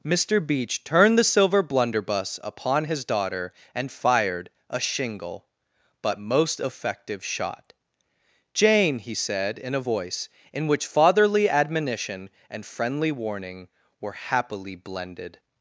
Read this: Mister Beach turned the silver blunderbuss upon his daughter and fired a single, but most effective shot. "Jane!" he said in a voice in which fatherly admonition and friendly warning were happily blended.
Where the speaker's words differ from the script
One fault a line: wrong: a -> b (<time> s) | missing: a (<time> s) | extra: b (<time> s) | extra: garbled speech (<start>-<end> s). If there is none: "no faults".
wrong: single -> shingle (4.8 s)